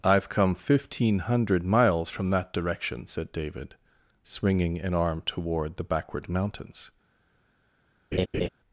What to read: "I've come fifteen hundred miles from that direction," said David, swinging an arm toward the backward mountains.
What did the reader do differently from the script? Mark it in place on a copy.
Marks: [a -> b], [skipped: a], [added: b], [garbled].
"I've come fifteen hundred miles from that direction," said David, swinging an arm toward the backward mountains.